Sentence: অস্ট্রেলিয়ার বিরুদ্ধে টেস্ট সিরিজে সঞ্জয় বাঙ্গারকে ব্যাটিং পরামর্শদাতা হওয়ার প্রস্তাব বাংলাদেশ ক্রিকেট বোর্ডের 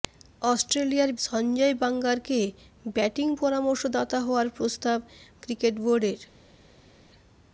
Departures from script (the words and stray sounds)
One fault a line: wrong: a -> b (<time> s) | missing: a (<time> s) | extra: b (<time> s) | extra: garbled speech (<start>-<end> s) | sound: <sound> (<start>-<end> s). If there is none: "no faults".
missing: বিরুদ্ধে টেস্ট সিরিজে (1.1 s)
missing: বাংলাদেশ (5.0 s)